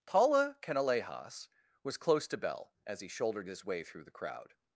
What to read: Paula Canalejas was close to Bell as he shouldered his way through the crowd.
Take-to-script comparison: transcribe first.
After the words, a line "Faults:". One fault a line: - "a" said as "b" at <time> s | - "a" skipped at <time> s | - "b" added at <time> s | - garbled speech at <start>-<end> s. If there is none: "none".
Paula Canalejas was close to Bell as he shouldered his way through the crowd.
Faults:
none